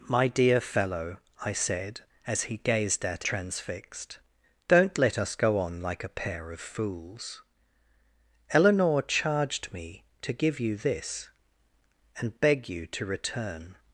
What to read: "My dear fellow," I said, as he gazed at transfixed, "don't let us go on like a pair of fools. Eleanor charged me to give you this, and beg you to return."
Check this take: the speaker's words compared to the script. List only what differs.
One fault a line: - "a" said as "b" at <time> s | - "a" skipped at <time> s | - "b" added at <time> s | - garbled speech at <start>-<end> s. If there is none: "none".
none